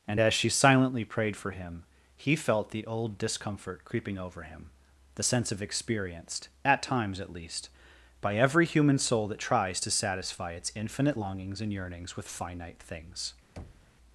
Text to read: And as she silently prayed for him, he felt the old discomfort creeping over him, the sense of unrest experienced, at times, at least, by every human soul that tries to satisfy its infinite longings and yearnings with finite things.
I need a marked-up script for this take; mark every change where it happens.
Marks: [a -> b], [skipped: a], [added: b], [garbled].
And as she silently prayed for him, he felt the old discomfort creeping over him, the sense of [skipped: unrest] experienced, at times, at least, by every human soul that tries to satisfy its infinite longings and yearnings with finite things.